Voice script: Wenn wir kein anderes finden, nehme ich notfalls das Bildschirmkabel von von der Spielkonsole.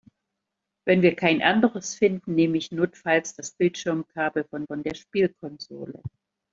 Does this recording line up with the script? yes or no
yes